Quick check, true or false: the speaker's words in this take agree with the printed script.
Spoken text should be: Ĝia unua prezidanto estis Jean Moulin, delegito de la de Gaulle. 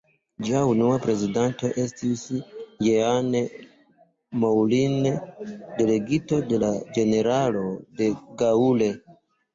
false